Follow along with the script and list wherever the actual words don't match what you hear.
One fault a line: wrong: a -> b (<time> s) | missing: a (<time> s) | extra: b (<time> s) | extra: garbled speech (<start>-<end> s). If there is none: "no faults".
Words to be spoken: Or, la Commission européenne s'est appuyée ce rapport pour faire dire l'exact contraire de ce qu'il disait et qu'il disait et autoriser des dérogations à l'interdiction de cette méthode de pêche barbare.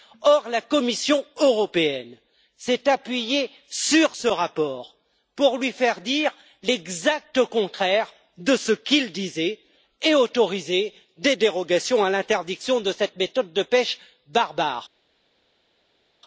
extra: sur (3.7 s)
extra: lui (5.6 s)
missing: qu'il disait et (10.1 s)